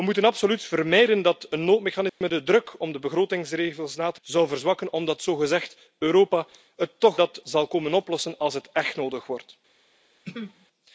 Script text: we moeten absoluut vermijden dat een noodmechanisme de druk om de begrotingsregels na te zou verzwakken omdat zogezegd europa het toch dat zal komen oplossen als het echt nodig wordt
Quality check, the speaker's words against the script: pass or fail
pass